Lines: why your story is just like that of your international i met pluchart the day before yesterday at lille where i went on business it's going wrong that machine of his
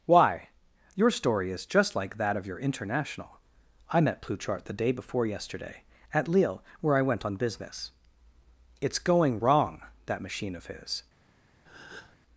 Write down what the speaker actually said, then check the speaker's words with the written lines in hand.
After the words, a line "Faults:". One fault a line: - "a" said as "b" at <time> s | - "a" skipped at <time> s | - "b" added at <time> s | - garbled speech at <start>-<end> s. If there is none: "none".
why your story is just like that of your international i met pluchart the day before yesterday at lille where i went on business it's going wrong that machine of his
Faults:
none